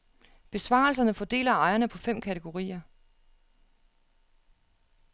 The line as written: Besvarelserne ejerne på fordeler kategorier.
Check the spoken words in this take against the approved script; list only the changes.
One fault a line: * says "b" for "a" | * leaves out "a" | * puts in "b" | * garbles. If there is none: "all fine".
* puts in "fordeler"
* says "fem" for "fordeler"